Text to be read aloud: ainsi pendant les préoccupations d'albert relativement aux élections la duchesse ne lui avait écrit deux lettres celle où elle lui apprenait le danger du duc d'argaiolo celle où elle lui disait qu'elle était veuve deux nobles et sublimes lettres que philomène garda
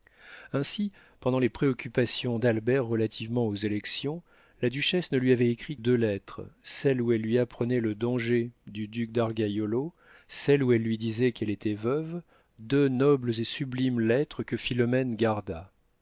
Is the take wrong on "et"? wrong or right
right